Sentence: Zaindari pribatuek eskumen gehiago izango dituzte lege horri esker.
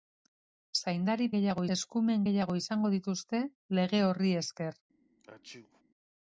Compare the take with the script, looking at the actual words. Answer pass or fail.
fail